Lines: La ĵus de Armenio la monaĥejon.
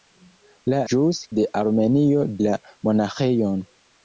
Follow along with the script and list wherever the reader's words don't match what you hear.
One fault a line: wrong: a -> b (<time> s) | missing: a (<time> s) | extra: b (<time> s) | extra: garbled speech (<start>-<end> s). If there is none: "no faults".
no faults